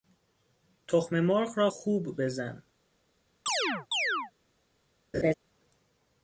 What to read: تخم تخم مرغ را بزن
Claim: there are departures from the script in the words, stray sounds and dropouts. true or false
true